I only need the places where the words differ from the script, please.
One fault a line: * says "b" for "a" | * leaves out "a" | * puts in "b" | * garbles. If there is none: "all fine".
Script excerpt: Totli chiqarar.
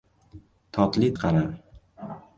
all fine